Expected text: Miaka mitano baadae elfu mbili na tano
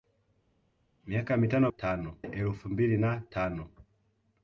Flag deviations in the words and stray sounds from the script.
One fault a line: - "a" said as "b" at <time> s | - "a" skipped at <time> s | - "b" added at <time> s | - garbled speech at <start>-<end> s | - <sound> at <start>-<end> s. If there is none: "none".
- "baadae" said as "tano" at 1.7 s